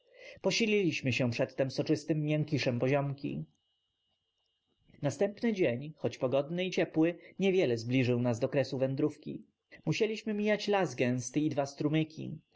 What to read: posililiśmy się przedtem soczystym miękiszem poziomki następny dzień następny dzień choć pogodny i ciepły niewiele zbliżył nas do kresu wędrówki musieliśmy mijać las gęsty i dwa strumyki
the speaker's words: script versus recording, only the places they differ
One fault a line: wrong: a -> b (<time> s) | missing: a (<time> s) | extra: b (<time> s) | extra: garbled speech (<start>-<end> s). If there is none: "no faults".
missing: następny dzień (5.9 s)